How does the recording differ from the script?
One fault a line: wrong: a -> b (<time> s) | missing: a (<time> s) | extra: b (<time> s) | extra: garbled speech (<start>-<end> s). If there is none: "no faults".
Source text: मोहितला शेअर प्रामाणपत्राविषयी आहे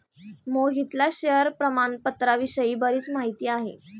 extra: बरीच माहिती (2.8 s)